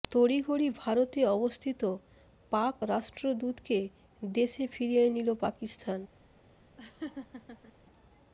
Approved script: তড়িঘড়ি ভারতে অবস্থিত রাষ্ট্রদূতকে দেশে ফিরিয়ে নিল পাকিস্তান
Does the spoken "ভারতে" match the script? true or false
true